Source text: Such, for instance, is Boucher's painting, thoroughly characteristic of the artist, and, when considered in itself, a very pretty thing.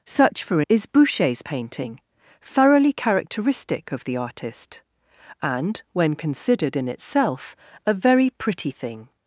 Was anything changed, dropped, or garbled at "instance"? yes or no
yes